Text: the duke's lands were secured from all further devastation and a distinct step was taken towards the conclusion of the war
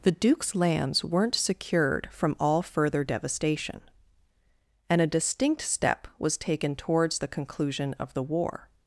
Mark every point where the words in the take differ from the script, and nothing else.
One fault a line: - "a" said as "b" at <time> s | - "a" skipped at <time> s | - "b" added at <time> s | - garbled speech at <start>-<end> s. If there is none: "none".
- "were" said as "weren't" at 1.0 s